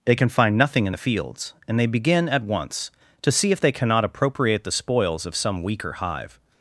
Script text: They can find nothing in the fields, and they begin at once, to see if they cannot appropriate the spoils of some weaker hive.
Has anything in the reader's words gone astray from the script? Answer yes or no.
no